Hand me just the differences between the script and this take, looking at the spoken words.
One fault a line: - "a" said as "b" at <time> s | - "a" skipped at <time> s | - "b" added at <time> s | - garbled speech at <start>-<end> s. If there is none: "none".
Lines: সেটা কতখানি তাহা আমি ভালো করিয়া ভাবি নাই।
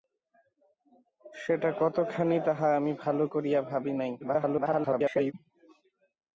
- garbled speech at 4.2-5.3 s